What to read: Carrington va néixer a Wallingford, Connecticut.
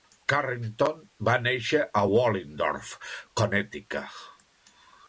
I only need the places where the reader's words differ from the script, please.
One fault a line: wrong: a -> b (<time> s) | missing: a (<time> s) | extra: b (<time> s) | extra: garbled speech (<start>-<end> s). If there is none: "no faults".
no faults